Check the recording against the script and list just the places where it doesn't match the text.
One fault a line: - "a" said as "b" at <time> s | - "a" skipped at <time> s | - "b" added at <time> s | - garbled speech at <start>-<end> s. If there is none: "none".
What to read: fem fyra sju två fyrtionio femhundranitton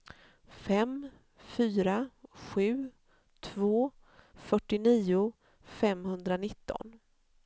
none